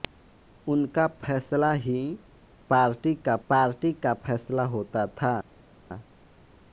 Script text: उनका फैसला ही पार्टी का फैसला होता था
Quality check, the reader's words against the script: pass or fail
fail